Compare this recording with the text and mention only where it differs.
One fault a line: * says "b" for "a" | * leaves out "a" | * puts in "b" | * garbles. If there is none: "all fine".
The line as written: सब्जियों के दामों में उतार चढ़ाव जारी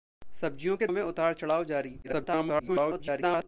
* leaves out "दामों"
* garbles